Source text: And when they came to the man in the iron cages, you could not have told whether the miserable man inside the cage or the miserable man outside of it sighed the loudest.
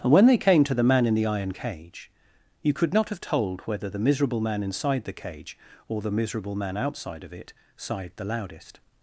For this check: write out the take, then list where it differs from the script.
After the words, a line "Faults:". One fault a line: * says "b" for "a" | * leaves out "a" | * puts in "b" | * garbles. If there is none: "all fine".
And when they came to the man in the iron cage, you could not have told whether the miserable man inside the cage or the miserable man outside of it sighed the loudest.
Faults:
* says "cage" for "cages"